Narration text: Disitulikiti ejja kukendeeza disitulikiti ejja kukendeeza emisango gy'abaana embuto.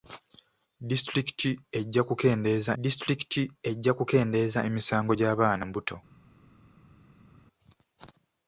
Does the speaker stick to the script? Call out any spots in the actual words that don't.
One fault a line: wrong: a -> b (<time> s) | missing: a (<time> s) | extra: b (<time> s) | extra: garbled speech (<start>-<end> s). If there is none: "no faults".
no faults